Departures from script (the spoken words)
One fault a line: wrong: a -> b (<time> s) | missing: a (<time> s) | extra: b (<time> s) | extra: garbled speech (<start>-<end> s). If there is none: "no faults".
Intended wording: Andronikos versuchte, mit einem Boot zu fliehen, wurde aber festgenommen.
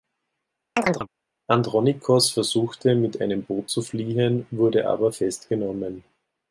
no faults